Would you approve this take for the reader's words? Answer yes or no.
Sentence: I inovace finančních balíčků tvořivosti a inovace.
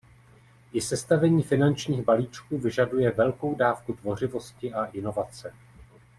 no